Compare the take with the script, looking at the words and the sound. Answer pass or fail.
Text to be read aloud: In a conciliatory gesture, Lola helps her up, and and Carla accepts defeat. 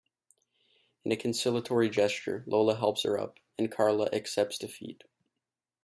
fail